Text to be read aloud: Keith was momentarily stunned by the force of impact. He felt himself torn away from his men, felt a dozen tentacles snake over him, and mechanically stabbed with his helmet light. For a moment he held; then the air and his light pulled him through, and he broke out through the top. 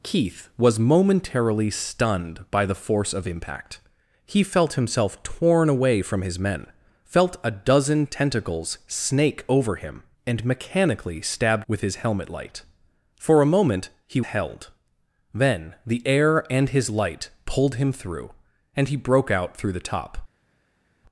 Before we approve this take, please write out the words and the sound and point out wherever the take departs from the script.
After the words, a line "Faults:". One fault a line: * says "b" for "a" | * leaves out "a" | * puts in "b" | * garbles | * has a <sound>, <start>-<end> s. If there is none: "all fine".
Keith was momentarily stunned by the force of impact. He felt himself torn away from his men, felt a dozen tentacles snake over him, and mechanically stabbed with his helmet light. For a moment he held; then the air and his light pulled him through, and he broke out through the top.
Faults:
all fine